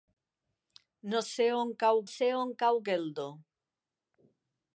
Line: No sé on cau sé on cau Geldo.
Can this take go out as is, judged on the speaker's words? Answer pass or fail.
pass